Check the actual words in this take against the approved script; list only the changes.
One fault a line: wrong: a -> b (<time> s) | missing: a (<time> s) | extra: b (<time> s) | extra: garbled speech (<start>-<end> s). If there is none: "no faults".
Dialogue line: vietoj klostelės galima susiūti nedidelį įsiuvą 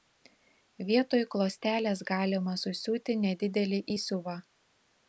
no faults